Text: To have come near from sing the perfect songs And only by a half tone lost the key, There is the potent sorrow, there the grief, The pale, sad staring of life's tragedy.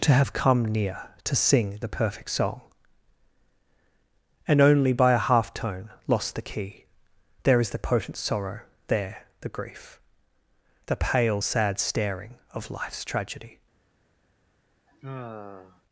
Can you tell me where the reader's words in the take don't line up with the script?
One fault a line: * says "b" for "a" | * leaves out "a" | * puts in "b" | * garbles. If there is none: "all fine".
* says "to" for "from"
* says "song" for "songs"